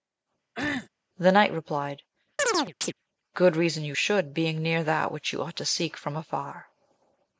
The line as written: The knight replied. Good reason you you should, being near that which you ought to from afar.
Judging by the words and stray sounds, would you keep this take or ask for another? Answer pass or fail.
fail